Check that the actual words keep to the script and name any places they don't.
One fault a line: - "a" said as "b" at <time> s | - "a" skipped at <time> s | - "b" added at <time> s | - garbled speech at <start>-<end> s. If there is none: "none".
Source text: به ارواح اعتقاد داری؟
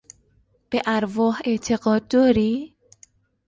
none